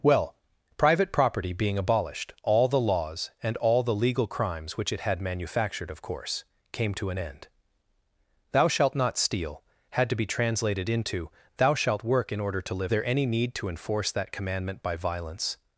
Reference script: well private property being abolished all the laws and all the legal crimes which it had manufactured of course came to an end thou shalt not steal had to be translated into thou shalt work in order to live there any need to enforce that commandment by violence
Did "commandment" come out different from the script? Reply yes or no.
no